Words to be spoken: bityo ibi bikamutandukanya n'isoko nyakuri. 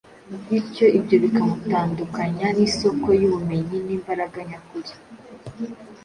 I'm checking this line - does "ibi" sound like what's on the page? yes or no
no